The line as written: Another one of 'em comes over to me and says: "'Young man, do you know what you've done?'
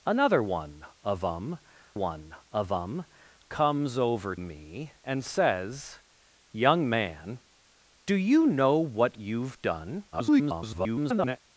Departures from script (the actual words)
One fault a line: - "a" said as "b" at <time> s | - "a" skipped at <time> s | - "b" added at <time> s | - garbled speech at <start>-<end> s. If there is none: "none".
- "one of em" added at 1.9 s
- "to" skipped at 4.3 s
- garbled speech at 10.1-11.4 s